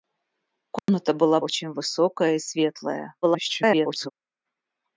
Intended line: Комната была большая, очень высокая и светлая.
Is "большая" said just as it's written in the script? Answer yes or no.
no